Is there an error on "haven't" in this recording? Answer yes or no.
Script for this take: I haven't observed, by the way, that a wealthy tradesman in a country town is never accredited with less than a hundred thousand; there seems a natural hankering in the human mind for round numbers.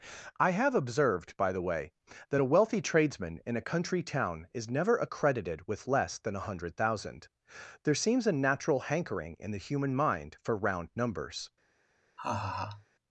yes